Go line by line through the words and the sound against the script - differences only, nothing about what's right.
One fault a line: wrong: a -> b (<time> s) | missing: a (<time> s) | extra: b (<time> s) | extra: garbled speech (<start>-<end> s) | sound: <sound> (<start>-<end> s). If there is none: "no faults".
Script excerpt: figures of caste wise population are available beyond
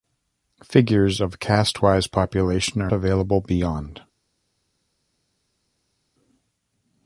no faults